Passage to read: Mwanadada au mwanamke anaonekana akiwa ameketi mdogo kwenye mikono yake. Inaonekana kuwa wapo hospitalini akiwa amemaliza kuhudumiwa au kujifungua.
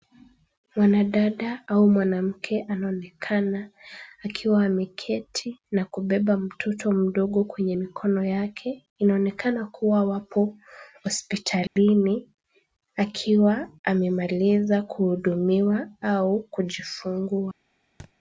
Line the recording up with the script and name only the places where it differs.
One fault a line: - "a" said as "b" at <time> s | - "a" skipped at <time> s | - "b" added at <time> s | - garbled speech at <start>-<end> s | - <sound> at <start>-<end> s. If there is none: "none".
- "na kubeba mtoto" added at 5.7 s
- dropout at 11.7-11.8 s
- thud at 18.0-18.1 s